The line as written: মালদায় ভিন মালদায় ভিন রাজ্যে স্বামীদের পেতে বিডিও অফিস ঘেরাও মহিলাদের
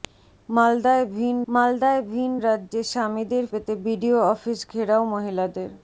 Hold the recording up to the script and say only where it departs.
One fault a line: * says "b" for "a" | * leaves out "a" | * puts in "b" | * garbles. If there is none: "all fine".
all fine